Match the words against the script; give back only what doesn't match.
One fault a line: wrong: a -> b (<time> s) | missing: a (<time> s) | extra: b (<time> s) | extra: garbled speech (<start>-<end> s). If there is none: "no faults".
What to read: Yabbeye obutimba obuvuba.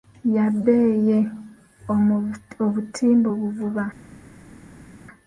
no faults